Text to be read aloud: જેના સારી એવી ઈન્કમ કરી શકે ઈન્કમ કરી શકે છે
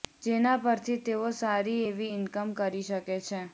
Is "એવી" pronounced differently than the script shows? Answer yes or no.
no